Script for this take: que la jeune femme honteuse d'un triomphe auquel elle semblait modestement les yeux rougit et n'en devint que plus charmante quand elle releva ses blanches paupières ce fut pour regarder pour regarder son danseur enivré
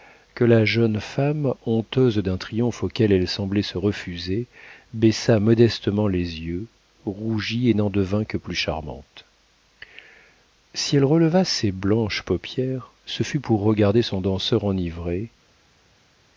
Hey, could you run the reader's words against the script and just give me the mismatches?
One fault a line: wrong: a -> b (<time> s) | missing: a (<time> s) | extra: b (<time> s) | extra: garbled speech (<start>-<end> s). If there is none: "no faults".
extra: se refuser baissa (3.6 s)
wrong: quand -> si (10.7 s)
missing: pour regarder (14.0 s)